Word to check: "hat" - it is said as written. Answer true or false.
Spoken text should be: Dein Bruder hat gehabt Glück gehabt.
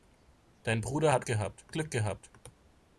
true